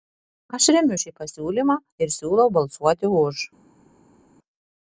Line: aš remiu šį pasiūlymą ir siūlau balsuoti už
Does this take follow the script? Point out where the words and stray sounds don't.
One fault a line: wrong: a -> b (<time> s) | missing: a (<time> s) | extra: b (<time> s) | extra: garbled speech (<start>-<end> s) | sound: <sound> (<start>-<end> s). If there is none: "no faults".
no faults